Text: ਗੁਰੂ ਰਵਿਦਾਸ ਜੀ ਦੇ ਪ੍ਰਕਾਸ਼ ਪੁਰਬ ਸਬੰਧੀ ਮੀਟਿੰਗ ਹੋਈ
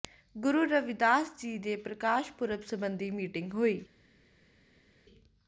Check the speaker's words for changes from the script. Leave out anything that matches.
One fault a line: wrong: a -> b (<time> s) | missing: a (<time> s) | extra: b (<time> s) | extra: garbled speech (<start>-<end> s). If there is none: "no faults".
no faults